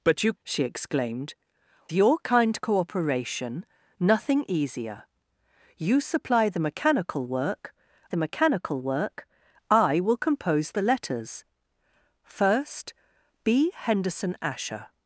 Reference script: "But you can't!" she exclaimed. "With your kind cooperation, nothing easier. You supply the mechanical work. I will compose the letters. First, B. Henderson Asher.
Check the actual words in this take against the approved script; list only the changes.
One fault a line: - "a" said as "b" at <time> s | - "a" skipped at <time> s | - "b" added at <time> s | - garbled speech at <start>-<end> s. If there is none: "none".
- "can't" skipped at 0.3 s
- "With" skipped at 1.3 s
- "the mechanical work" added at 8.1 s